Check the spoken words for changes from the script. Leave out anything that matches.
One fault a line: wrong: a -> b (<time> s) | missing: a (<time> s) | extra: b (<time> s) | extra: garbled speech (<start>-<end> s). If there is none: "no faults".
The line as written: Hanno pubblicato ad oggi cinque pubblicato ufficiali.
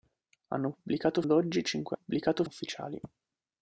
no faults